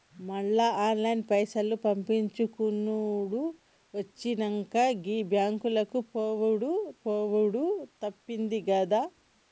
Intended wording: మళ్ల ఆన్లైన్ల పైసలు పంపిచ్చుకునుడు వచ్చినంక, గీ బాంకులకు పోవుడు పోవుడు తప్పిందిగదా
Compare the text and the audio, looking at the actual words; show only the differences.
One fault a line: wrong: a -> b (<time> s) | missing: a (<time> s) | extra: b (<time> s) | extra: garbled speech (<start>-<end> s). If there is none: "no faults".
no faults